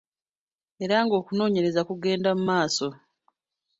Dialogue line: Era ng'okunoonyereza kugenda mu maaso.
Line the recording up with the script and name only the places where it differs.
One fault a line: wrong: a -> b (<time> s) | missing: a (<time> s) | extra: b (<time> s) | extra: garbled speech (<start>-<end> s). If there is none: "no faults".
no faults